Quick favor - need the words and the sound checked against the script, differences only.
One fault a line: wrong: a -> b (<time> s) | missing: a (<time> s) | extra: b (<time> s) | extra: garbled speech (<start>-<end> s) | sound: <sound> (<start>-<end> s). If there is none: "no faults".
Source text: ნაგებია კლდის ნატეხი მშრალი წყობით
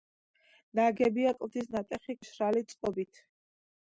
no faults